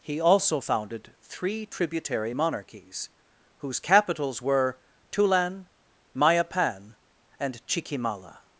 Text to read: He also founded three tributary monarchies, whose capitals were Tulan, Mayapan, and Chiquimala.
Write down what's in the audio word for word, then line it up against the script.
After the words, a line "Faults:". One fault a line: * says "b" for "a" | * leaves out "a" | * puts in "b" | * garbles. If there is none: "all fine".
He also founded three tributary monarchies, whose capitals were Tulan, Mayapan, and Chiquimala.
Faults:
all fine